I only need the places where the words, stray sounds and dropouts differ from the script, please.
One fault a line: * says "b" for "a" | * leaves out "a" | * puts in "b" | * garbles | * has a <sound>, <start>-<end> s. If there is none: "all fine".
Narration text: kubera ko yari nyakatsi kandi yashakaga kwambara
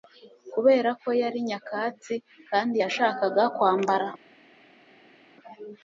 all fine